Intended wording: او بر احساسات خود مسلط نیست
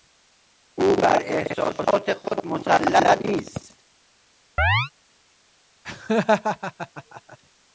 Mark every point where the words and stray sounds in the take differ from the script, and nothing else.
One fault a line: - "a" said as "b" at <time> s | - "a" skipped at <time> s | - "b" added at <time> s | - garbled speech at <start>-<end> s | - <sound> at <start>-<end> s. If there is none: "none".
- chirp at 4.6-4.9 s
- laugh at 5.8-7.4 s